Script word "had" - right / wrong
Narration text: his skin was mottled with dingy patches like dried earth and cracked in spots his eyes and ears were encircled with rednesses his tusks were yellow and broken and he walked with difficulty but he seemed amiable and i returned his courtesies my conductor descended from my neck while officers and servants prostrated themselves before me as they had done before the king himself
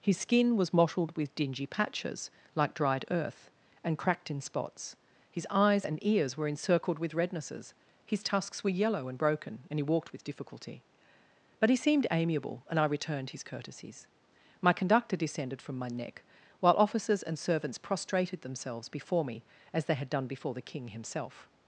right